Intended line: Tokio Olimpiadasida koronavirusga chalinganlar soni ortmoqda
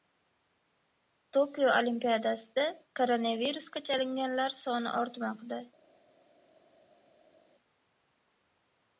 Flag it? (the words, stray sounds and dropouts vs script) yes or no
no